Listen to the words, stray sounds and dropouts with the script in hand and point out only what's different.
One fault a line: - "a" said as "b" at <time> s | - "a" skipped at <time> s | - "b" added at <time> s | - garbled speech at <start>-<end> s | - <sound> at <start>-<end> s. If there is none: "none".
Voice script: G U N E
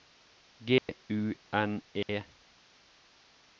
- dropout at 0.8-0.9 s
- dropout at 2.0-2.1 s